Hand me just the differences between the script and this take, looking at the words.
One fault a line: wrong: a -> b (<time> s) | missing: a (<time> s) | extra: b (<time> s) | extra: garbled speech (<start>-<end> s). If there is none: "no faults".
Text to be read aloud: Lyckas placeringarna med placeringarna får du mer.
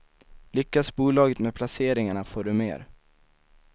wrong: placeringarna -> bolaget (0.9 s)